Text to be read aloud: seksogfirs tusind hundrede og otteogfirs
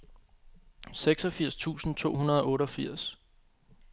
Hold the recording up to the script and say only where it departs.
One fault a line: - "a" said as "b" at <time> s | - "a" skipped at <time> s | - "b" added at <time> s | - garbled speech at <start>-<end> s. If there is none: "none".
- "to" added at 1.9 s